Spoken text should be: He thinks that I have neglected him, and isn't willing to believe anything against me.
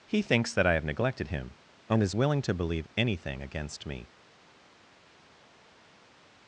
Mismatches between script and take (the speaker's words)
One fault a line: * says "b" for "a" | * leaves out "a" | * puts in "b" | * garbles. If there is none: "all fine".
* says "is" for "isn't"